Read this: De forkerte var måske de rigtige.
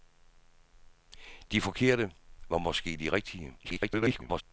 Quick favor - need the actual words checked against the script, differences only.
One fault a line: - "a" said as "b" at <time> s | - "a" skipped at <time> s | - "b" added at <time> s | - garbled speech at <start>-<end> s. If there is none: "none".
- garbled speech at 3.6-4.4 s